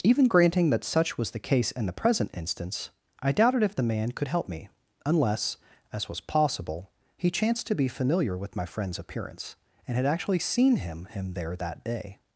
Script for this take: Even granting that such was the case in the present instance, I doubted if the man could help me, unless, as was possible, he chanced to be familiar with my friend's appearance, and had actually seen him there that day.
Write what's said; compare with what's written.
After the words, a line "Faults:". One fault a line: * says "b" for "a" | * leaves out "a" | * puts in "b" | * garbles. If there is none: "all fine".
Even granting that such was the case in the present instance, I doubted if the man could help me, unless, as was possible, he chanced to be familiar with my friend's appearance, and had actually seen him him there that day.
Faults:
* puts in "him"